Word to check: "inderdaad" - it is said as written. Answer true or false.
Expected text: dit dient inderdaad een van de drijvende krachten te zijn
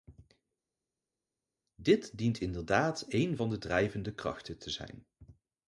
true